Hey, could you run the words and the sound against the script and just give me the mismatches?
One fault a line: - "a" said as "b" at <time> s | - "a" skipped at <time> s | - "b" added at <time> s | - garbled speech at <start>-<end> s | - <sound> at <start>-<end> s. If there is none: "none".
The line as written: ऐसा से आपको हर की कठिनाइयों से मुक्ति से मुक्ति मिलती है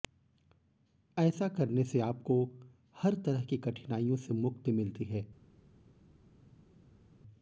- "करने" added at 1.5 s
- "तरह" added at 3.2 s
- "से मुक्ति" skipped at 4.7 s